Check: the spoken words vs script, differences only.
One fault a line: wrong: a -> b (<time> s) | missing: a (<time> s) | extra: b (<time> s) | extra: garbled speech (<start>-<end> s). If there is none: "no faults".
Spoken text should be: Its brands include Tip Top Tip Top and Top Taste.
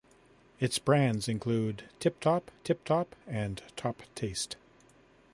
no faults